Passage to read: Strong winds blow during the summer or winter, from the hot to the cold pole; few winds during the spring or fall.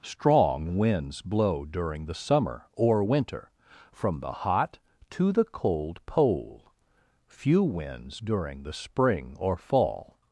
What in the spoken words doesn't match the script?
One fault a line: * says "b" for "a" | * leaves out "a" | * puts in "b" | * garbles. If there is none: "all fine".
all fine